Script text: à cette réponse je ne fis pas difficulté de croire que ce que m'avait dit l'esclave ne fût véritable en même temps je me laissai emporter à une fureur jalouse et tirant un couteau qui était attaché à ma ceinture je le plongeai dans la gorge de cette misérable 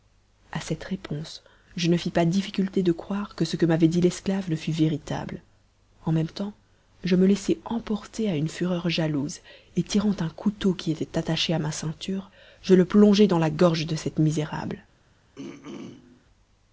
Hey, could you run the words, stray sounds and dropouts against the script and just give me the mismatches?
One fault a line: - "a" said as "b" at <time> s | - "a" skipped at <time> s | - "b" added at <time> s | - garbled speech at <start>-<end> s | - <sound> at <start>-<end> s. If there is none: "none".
- throat clearing at 15.4-16.2 s